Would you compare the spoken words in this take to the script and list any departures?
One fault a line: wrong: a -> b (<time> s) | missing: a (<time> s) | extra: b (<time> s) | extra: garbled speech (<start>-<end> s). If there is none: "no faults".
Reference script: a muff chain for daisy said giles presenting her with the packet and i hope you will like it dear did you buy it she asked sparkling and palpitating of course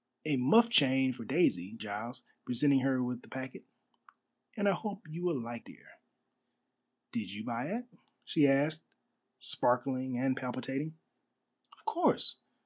missing: said (1.8 s)
missing: it (5.6 s)